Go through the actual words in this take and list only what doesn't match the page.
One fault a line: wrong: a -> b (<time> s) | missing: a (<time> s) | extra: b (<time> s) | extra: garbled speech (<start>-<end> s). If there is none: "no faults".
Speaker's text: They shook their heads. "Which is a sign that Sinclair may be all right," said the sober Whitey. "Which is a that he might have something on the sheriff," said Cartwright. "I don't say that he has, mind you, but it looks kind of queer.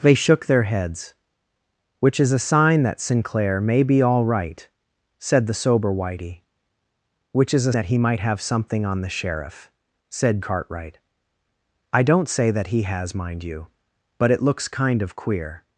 no faults